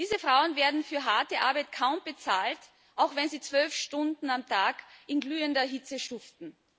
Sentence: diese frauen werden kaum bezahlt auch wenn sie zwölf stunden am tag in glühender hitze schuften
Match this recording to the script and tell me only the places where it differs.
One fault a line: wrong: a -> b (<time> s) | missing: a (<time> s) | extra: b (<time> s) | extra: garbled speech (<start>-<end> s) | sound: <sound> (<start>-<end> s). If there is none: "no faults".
extra: für harte arbeit (0.8 s)